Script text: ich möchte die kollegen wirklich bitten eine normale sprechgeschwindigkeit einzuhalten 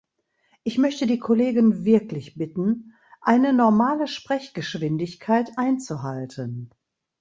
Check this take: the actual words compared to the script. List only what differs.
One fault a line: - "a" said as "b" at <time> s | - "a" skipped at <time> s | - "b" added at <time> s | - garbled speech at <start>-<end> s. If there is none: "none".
none